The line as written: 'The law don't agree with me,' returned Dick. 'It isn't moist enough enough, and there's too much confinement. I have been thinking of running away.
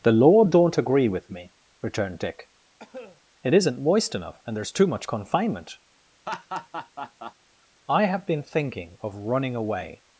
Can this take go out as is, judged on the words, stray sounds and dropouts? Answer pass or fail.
fail